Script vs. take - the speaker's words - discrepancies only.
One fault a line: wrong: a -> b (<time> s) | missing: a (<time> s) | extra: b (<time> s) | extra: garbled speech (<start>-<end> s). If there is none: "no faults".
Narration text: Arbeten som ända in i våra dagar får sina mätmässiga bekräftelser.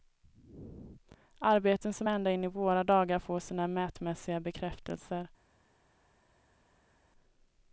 no faults